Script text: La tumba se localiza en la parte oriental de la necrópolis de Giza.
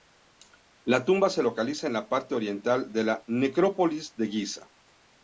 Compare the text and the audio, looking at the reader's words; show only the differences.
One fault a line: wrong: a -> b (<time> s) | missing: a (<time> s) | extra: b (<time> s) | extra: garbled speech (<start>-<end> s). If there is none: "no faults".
no faults